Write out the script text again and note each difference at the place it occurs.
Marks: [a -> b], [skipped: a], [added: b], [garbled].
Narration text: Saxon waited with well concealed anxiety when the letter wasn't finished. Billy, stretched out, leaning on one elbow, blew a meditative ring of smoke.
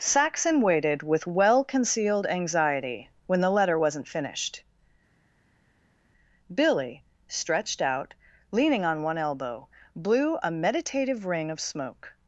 Saxon waited with well concealed anxiety when the letter wasn't finished. Billy, stretched out, leaning on one elbow, blew a meditative ring of smoke.